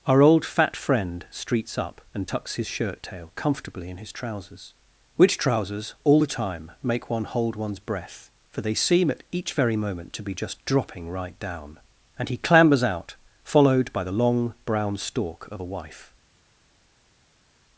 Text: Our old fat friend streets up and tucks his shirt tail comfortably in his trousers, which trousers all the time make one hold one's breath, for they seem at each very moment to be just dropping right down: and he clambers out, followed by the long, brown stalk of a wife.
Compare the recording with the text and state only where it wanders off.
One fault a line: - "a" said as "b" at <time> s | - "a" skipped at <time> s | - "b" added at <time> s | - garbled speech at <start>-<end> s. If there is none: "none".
none